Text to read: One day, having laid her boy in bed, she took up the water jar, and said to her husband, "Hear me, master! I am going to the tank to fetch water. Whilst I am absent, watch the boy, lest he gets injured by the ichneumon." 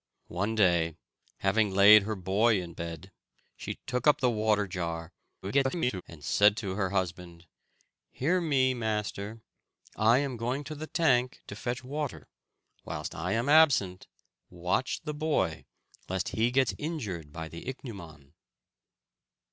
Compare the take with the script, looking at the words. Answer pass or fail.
fail